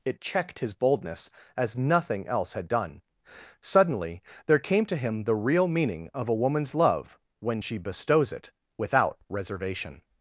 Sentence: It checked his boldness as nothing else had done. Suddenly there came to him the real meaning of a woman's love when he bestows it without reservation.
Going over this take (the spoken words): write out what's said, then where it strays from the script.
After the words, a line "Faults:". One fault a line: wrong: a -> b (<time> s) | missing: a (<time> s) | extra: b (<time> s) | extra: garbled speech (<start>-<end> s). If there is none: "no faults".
It checked his boldness as nothing else had done. Suddenly there came to him the real meaning of a woman's love when she bestows it without reservation.
Faults:
wrong: he -> she (7.6 s)